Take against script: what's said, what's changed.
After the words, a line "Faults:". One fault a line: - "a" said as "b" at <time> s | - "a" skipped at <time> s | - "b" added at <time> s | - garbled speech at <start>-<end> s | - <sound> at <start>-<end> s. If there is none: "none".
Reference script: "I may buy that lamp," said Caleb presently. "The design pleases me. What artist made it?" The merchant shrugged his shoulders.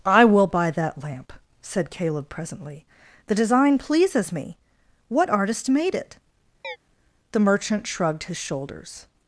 "I will buy that lamp," said Caleb presently. "The design pleases me. What artist made it?" The merchant shrugged his shoulders.
Faults:
- "may" said as "will" at 0.2 s
- chirp at 6.6-6.8 s